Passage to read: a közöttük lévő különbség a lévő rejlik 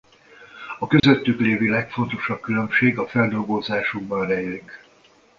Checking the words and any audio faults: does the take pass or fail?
fail